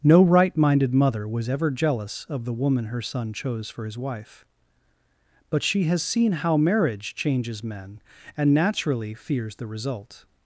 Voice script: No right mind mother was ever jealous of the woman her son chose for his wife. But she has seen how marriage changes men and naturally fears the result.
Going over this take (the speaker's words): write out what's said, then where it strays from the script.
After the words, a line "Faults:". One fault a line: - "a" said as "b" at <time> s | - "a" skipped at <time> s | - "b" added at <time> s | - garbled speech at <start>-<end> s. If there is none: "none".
No right minded mother was ever jealous of the woman her son chose for his wife. But she has seen how marriage changes men and naturally fears the result.
Faults:
- "mind" said as "minded" at 0.6 s